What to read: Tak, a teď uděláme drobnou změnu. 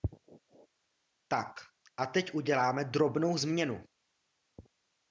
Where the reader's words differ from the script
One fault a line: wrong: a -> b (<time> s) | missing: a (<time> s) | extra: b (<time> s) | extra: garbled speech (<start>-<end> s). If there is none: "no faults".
no faults